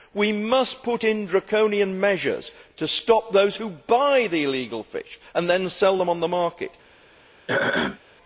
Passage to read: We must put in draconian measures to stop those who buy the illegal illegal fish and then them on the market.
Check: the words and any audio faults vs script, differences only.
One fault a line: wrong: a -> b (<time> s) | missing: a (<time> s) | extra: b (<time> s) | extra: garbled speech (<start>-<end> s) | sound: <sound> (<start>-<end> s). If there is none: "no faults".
missing: illegal (4.8 s)
extra: sell (5.7 s)
sound: throat clearing (7.5-8.0 s)